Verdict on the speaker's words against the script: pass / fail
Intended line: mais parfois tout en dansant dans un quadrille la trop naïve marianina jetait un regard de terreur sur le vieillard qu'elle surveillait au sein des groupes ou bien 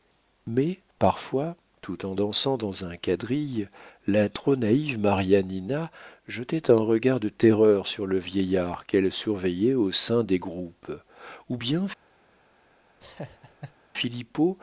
pass